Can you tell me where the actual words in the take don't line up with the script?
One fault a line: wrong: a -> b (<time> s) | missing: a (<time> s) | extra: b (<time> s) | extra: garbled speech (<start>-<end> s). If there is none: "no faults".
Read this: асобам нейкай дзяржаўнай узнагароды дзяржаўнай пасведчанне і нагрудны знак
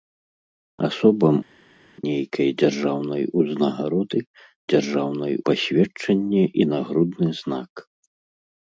no faults